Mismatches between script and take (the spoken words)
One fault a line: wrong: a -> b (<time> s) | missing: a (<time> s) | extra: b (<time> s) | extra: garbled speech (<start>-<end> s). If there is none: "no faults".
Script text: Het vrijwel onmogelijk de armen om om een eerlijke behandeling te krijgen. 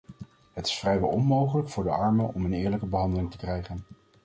extra: is (0.7 s)
extra: voor (1.7 s)
missing: om (2.5 s)